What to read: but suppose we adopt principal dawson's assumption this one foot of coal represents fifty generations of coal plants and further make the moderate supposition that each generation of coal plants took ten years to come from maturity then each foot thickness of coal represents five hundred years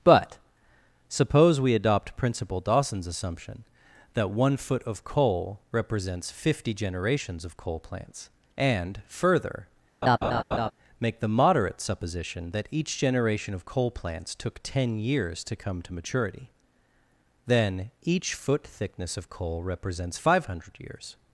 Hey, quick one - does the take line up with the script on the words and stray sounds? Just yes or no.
no